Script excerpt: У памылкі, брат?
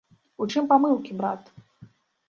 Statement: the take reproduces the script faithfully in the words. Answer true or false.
false